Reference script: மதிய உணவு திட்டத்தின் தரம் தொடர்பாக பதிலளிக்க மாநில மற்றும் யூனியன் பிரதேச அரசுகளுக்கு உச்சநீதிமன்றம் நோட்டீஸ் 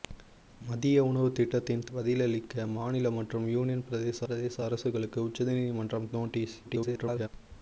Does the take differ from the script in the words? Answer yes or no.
yes